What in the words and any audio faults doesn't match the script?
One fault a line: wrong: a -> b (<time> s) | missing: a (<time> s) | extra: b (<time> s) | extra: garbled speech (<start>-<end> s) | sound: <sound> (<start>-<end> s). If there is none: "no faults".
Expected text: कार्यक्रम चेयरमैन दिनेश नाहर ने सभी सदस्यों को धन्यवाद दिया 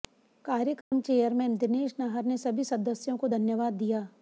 sound: dropout (0.8-0.9 s)